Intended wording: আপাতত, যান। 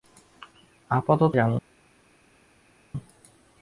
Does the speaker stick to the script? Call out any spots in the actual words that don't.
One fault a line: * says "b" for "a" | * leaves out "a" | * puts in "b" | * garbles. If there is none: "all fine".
all fine